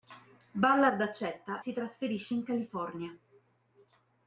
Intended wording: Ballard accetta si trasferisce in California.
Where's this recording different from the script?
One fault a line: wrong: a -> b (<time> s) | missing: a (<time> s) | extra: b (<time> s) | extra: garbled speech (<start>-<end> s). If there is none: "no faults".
no faults